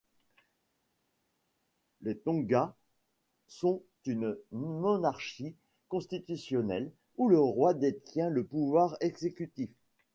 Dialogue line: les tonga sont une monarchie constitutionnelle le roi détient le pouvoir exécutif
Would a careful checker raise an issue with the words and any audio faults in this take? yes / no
yes